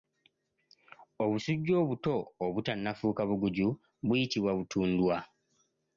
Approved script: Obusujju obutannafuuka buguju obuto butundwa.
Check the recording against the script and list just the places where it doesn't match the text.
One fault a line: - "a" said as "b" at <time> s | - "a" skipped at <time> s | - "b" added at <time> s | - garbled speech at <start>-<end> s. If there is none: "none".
- "obuto" added at 1.8 s
- "obuto" said as "buyitibwa" at 4.1 s